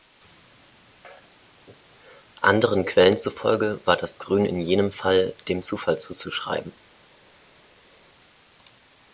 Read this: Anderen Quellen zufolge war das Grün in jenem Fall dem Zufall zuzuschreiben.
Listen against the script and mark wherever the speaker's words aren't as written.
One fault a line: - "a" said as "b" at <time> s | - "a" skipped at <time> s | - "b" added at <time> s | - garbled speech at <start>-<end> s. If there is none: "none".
none